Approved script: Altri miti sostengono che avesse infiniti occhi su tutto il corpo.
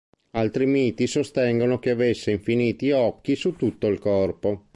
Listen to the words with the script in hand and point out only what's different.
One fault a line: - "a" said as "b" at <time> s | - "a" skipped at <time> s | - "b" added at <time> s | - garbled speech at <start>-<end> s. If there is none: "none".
none